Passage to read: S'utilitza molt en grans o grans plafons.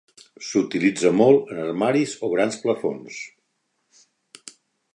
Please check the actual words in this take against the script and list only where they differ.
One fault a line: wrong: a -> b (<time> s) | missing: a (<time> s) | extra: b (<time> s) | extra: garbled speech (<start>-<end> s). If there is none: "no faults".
wrong: grans -> armaris (1.6 s)